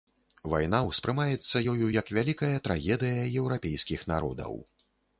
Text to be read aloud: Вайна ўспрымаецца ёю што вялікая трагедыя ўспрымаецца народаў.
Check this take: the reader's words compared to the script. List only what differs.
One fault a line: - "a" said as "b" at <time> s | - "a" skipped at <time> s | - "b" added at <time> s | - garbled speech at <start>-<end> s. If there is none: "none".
- "што" said as "як" at 2.0 s
- "ўспрымаецца" said as "еўрапейскіх" at 3.4 s